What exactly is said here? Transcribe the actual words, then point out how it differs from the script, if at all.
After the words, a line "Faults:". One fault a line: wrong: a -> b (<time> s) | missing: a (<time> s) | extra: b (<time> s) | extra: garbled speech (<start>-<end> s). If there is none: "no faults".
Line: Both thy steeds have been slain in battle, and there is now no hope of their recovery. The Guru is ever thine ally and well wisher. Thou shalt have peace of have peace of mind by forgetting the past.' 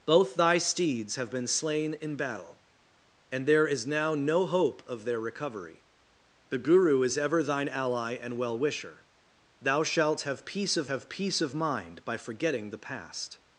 Both thy steeds have been slain in battle, and there is now no hope of their recovery. The Guru is ever thine ally and well wisher. Thou shalt have peace of have peace of mind by forgetting the past.'
Faults:
no faults